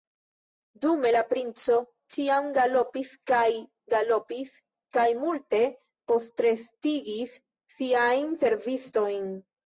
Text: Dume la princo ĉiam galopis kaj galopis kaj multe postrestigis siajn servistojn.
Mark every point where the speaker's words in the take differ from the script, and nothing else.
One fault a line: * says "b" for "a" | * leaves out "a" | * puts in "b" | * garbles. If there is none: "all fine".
all fine